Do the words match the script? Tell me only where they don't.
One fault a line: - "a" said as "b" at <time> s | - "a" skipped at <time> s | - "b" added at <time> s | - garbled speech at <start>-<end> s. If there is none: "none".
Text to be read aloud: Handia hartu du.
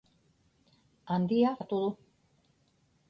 none